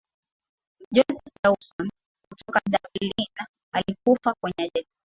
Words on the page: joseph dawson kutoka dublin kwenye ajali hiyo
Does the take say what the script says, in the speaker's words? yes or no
no